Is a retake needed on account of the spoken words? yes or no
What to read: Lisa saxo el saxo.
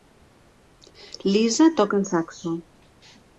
yes